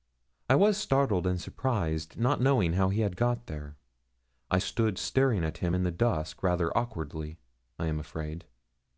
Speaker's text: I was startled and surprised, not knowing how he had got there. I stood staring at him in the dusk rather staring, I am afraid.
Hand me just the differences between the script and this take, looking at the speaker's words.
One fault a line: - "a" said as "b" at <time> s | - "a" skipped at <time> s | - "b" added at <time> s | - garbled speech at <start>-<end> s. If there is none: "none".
- "staring" said as "awkwardly" at 6.8 s